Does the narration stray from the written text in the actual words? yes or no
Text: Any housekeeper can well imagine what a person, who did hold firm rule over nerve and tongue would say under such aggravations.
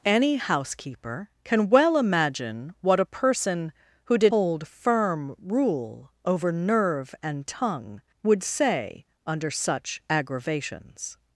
no